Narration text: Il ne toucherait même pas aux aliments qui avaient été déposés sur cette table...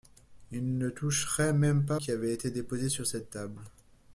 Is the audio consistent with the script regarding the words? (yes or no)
no